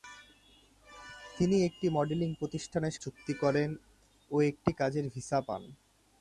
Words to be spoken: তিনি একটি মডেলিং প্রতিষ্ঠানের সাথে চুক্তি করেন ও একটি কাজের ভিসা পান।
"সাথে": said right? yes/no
no